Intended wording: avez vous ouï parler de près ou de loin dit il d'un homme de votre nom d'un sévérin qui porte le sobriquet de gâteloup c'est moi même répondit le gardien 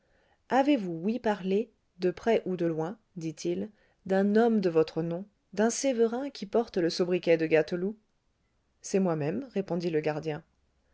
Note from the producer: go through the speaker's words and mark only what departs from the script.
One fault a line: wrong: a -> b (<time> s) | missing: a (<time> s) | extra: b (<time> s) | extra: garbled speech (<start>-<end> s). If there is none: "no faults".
no faults